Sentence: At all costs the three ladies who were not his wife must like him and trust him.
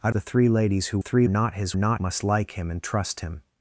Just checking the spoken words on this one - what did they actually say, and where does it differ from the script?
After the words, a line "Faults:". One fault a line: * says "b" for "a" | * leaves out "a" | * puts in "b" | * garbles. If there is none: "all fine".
At the three ladies who three not his not must like him and trust him.
Faults:
* leaves out "all costs"
* says "three" for "were"
* says "not" for "wife"